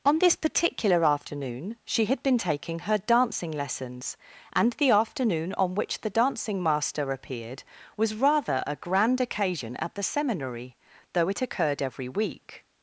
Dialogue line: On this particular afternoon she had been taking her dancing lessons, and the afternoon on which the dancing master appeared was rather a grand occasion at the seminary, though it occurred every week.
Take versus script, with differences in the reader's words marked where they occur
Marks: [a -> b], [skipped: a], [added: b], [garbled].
On this particular afternoon she had been taking her dancing lessons, and the afternoon on which the dancing master appeared was rather a grand occasion at the seminary, though it occurred every week.